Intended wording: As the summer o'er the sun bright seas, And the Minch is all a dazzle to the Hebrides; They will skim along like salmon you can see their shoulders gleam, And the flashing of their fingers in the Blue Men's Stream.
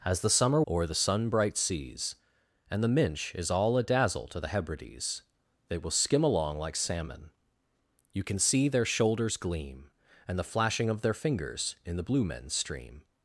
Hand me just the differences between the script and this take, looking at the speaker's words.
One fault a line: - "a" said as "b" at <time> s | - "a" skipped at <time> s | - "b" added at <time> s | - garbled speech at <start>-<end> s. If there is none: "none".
none